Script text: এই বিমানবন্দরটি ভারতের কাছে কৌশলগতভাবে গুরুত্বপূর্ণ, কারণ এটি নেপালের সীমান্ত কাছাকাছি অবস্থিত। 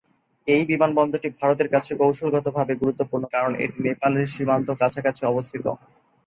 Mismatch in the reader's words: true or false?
false